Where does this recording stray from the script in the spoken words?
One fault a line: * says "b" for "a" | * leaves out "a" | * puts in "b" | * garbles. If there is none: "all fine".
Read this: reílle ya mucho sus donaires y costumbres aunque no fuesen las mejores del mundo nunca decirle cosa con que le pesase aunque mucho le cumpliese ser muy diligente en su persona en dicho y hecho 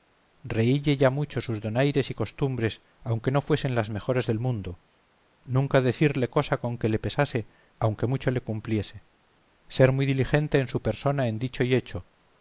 all fine